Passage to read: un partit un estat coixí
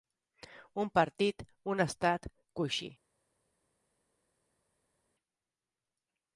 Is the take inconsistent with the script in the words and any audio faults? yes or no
no